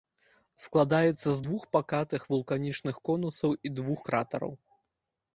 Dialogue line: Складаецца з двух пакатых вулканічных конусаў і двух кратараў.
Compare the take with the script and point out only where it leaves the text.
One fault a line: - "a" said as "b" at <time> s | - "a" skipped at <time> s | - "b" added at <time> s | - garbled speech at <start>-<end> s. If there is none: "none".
none